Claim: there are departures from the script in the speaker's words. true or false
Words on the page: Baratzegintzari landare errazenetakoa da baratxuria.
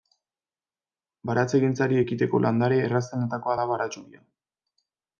true